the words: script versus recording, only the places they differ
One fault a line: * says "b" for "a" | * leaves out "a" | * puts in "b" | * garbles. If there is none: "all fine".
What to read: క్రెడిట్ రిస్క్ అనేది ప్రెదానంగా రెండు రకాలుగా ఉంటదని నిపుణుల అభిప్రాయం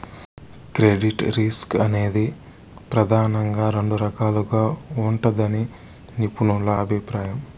all fine